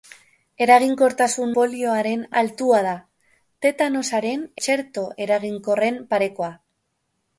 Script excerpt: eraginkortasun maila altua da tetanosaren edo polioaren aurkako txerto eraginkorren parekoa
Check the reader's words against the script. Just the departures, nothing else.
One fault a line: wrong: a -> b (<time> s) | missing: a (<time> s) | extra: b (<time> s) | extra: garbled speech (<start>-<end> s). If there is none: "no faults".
wrong: maila -> polioaren (1.6 s)
missing: edo polioaren aurkako (4.5 s)